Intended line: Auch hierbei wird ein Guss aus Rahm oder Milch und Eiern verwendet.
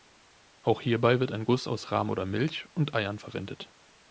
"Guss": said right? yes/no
yes